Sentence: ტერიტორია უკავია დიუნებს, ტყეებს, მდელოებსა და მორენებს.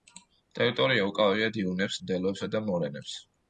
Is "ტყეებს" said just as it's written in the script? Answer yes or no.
no